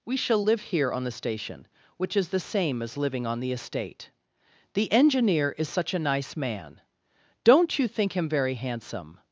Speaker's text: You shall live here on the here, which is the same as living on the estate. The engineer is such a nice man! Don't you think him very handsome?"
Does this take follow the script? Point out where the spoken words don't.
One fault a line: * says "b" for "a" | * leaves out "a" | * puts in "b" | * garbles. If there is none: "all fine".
* says "We" for "You"
* says "station" for "here"